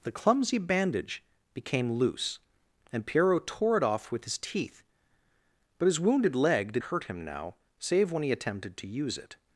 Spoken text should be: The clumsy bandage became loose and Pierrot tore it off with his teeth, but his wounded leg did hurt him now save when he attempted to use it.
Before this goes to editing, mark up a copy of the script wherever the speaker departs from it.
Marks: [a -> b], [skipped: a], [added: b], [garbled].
The clumsy bandage became loose and Pierrot tore it off with his teeth, but his wounded leg did hurt him now save when he attempted to use it.